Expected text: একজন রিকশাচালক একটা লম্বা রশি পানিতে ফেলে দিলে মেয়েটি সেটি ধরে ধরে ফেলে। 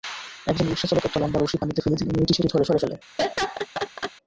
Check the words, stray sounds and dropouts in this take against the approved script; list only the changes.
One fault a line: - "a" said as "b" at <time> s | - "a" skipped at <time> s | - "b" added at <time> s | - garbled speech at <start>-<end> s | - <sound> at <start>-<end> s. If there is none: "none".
- laugh at 3.2-4.1 s